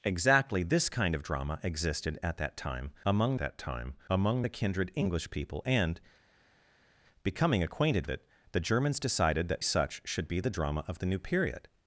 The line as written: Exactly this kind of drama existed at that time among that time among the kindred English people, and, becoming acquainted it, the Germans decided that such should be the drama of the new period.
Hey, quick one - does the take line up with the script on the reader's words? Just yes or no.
yes